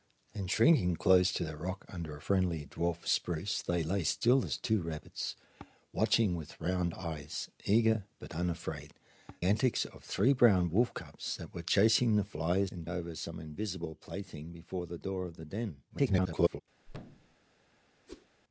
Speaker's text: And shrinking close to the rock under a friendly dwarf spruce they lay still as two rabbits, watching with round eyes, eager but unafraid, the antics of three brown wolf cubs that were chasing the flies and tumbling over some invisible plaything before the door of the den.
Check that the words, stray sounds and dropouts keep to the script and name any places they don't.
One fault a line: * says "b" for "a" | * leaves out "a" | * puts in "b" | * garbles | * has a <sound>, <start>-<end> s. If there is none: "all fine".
* leaves out "the"
* leaves out "tumbling"
* garbles
* has a thud, 16.9-17.4 s
* has a whoosh, 18.1-18.3 s